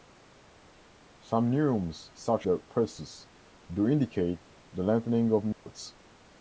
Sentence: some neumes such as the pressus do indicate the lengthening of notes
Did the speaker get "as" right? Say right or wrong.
wrong